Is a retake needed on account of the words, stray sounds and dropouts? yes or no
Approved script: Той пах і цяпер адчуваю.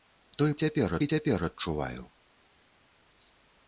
yes